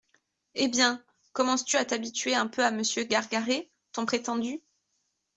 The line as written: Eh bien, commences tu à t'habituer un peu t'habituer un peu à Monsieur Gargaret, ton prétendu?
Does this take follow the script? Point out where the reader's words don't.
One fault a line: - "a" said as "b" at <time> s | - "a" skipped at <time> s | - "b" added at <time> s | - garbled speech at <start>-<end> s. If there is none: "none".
- "t'habituer un peu" skipped at 2.6 s